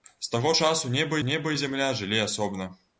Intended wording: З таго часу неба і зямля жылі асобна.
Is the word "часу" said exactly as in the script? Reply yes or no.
yes